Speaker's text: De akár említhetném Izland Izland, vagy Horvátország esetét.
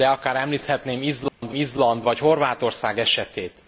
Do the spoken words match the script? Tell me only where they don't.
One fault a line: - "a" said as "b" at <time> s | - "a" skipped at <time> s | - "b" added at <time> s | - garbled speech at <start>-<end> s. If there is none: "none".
none